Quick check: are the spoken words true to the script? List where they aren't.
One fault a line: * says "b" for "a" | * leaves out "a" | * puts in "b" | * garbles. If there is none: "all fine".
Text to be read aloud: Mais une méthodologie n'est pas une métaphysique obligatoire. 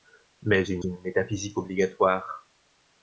* leaves out "méthodologie n'est pas"